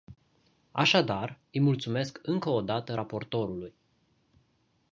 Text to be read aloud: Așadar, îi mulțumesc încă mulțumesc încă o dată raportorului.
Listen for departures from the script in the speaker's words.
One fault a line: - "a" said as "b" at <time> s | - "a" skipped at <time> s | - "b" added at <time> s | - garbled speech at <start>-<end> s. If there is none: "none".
- "mulțumesc încă" skipped at 2.5 s